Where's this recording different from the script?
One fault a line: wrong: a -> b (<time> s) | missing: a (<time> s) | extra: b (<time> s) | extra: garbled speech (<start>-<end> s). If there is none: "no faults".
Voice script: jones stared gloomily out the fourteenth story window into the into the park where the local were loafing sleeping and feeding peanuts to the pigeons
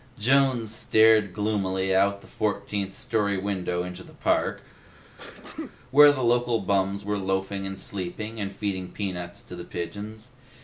missing: into the (4.2 s)
extra: bums (6.6 s)
extra: and (7.6 s)